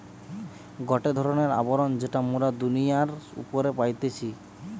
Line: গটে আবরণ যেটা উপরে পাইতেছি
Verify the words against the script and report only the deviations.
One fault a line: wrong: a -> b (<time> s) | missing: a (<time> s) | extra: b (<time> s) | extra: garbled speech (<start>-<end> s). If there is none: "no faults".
extra: ধরণের (1.2 s)
extra: মোরা দুনিয়ার (2.3 s)